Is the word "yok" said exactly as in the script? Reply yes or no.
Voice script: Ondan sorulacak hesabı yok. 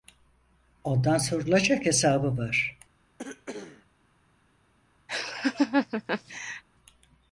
no